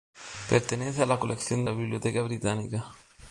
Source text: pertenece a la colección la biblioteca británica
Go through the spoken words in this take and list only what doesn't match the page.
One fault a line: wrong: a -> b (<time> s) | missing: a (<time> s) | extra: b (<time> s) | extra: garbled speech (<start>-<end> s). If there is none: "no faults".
no faults